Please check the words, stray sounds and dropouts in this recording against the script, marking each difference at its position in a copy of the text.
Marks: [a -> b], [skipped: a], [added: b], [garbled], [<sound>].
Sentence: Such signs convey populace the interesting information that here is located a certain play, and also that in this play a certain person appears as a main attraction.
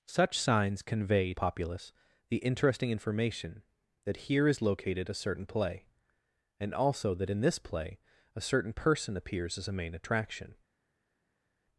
Such signs convey populace the interesting information that here is located a certain play, and also that in this play a certain person appears as a main attraction.